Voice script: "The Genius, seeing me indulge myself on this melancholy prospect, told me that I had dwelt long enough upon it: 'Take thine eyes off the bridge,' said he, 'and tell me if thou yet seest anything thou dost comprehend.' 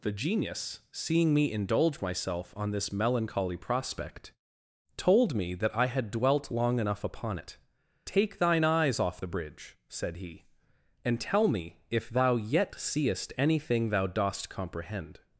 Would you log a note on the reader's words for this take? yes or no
no